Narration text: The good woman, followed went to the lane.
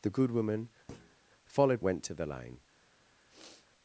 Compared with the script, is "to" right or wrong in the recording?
right